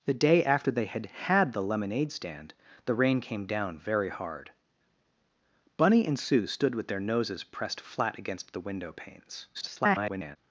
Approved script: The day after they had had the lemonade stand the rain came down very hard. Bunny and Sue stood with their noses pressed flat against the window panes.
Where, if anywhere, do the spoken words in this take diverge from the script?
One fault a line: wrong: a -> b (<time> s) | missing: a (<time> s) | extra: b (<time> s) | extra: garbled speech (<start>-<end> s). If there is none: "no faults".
extra: garbled speech (9.5-10.4 s)